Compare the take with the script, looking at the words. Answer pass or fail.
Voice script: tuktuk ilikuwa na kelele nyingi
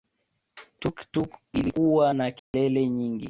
pass